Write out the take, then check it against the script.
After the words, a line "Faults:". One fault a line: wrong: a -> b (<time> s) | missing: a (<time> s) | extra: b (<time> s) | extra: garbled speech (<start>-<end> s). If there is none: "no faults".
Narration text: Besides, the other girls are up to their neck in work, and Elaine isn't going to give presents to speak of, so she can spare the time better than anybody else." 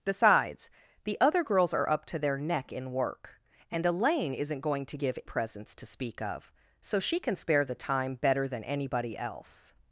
Besides, the other girls are up to their neck in work, and Elaine isn't going to give presents to speak of, so she can spare the time better than anybody else."
Faults:
no faults